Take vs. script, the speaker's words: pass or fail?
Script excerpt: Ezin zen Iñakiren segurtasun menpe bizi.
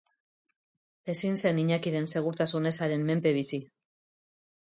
fail